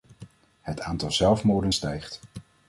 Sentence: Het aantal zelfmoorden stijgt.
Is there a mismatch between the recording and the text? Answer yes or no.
no